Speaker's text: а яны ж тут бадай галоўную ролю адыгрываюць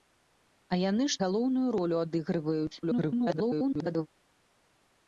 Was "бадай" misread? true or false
true